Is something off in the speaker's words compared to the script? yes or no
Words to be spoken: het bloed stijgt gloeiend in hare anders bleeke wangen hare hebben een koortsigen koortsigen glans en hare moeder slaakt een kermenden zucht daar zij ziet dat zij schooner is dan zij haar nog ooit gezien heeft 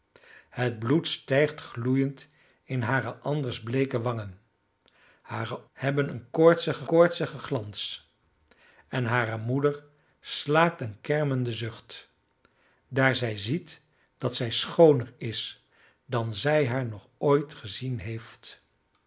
no